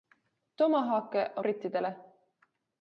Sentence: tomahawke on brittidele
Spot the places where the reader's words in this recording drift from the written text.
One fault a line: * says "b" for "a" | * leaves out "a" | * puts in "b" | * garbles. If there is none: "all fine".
all fine